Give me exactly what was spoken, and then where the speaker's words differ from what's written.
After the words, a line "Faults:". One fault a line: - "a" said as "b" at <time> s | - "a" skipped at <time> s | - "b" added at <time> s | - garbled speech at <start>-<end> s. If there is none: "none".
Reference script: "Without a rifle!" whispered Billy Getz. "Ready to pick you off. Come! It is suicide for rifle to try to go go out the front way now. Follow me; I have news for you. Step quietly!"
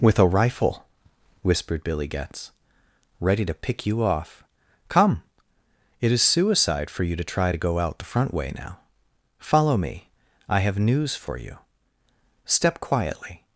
"With a rifle!" whispered Billy Getz. "Ready to pick you off. Come! It is suicide for you to try to go out the front way now. Follow me; I have news for you. Step quietly!"
Faults:
- "Without" said as "With" at 0.0 s
- "rifle" said as "you" at 7.0 s
- "go" skipped at 7.8 s